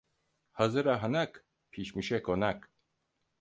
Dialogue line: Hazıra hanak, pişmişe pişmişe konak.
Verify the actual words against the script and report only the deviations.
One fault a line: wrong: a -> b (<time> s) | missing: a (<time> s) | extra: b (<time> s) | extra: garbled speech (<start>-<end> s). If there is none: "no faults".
missing: pişmişe (2.2 s)